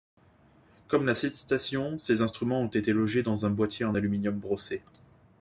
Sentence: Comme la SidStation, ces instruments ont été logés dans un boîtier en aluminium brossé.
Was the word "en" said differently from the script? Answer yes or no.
no